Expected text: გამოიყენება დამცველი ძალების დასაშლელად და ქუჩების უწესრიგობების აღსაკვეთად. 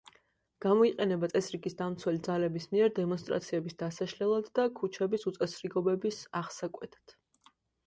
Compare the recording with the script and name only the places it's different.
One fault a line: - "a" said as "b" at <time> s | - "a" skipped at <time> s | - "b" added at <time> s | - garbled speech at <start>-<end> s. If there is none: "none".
- "წესრიგის" added at 1.3 s
- "მიერ დემონსტრაციების" added at 2.8 s